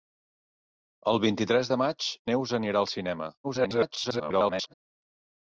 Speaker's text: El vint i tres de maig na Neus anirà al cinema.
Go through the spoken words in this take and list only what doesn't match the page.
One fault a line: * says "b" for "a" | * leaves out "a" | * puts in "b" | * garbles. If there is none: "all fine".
* leaves out "na"
* garbles